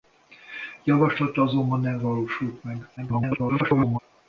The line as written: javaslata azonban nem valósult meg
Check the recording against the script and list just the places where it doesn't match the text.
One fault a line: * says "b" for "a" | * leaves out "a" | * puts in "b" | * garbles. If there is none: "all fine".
* garbles